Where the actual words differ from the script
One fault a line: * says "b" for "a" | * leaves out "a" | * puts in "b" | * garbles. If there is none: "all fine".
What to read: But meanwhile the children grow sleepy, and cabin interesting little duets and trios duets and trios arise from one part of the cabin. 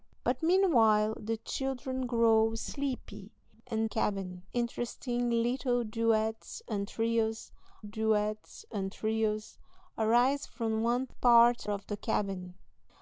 all fine